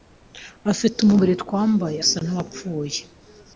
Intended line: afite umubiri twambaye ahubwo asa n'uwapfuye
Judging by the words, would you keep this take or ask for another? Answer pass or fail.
fail